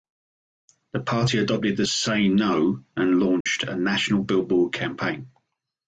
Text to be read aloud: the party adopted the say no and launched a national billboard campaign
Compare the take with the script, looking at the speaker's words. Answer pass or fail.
pass